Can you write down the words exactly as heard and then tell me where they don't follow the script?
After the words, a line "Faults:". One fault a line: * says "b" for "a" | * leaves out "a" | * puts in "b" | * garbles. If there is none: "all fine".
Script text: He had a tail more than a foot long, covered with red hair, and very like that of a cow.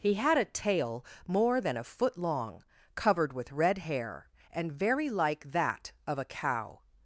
He had a tail more than a foot long, covered with red hair, and very like that of a cow.
Faults:
all fine